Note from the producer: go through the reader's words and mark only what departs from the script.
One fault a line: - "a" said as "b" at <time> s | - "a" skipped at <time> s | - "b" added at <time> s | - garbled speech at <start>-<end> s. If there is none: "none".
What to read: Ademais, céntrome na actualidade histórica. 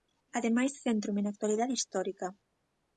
none